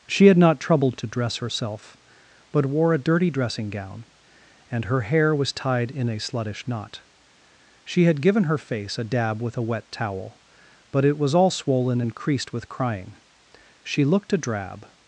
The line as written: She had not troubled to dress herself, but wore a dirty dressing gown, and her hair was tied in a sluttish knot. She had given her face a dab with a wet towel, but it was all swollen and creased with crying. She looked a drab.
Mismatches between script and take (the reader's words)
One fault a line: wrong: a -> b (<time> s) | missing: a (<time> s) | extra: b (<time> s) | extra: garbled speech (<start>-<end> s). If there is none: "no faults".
no faults